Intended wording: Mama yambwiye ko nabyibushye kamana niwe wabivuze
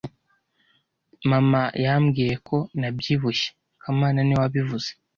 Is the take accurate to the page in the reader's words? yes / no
yes